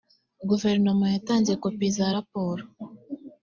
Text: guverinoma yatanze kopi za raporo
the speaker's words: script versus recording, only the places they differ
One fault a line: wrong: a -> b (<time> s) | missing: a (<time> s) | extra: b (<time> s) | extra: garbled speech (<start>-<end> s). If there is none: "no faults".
no faults